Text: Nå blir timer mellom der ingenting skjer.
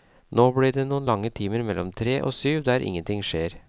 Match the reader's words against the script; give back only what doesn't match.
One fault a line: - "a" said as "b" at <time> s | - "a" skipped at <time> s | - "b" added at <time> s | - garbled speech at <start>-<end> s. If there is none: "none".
- "det noen lange" added at 0.8 s
- "tre og syv" added at 2.0 s